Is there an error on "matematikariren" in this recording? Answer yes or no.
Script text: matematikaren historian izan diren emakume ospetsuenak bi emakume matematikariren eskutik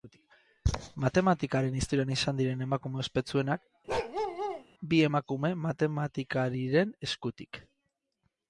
no